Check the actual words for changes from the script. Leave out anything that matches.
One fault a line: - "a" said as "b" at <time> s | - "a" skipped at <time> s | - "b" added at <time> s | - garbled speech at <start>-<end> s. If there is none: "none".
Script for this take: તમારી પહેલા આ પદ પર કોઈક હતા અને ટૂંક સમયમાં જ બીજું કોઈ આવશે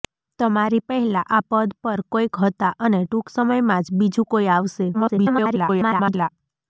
- garbled speech at 4.9-6.3 s